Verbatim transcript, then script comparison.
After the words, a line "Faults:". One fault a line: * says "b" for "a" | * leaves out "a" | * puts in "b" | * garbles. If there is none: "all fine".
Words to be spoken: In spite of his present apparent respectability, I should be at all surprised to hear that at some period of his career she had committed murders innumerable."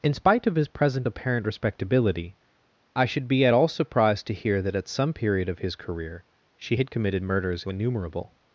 In spite of his present apparent respectability, I should be at all surprised to hear that at some period of his career she had committed murders innumerable."
Faults:
all fine